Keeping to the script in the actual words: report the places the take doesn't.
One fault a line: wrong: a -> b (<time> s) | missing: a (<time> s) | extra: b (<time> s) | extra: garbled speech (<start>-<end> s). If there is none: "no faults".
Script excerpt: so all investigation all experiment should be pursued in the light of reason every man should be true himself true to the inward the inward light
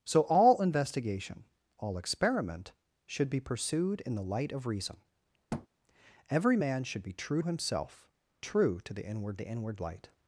no faults